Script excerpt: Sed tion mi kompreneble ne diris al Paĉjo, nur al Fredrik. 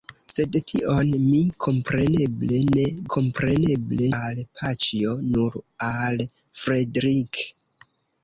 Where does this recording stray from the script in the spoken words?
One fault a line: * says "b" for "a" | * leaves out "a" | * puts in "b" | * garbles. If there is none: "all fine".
* says "kompreneble" for "diris"